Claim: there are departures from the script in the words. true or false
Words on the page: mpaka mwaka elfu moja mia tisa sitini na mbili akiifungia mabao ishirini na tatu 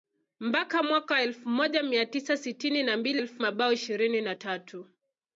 true